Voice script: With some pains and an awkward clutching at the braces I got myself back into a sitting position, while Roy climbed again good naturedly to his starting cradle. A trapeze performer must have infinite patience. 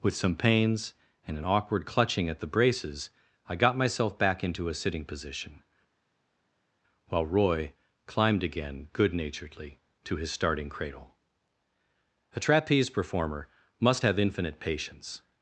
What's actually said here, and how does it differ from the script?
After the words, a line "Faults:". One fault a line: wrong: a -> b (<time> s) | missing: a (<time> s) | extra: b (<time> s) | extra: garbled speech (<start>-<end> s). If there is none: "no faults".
With some pains and an awkward clutching at the braces I got myself back into a sitting position, while Roy climbed again good naturedly to his starting cradle. A trapeze performer must have infinite patience.
Faults:
no faults